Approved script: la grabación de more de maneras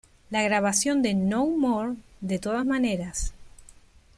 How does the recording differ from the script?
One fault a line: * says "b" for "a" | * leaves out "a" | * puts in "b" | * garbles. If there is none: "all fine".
* puts in "no"
* puts in "todas"